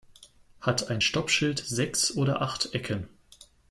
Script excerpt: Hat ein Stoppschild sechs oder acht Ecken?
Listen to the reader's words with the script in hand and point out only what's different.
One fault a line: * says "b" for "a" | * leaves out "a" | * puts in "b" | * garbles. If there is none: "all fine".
all fine